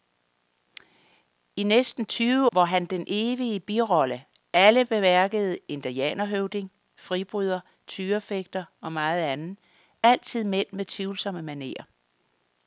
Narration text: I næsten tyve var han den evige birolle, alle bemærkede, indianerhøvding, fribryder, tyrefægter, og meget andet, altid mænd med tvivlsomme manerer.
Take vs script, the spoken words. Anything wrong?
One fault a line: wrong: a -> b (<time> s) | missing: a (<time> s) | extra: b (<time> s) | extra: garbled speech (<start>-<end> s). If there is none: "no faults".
no faults